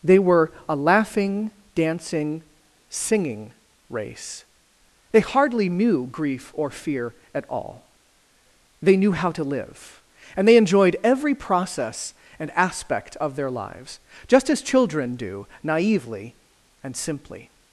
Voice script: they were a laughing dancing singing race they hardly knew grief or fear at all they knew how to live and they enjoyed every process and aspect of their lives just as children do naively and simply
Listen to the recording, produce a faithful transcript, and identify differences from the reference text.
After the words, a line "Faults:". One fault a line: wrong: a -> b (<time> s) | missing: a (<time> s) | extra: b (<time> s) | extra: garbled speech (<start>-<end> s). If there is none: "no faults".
they were a laughing dancing singing race they hardly knew grief or fear at all they knew how to live and they enjoyed every process and aspect of their lives just as children do naively and simply
Faults:
no faults